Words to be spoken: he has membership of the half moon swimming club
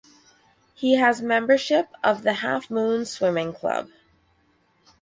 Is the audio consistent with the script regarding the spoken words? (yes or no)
yes